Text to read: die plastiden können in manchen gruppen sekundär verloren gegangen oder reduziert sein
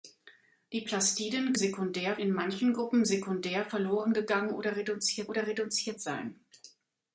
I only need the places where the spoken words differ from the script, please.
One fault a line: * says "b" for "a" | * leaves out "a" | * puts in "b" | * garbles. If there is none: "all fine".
* says "sekundär" for "können"
* puts in "oder reduziert"